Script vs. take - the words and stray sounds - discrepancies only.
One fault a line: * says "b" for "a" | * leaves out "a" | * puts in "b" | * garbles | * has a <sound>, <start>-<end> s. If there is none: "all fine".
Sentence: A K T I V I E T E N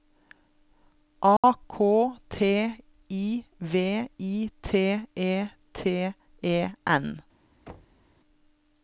* has a dropout, 1.4-1.4 s
* puts in "T"
* has a thud, 7.7-8.0 s